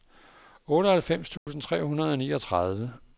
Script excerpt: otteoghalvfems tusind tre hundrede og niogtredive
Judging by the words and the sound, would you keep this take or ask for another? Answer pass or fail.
fail